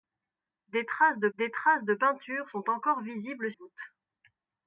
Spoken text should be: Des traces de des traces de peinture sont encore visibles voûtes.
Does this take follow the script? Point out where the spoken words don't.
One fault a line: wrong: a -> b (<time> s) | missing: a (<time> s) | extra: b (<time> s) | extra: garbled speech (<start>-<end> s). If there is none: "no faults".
no faults